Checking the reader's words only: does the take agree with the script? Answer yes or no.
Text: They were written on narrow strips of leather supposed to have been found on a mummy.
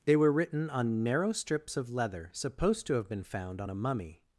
yes